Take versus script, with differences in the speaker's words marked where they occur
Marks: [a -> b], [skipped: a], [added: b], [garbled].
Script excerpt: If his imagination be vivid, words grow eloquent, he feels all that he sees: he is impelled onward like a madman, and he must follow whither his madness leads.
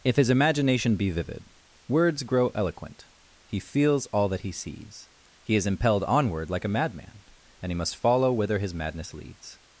If his imagination be vivid, words grow eloquent, he feels all that he sees: he is impelled onward like a madman, and he must follow whither his madness leads.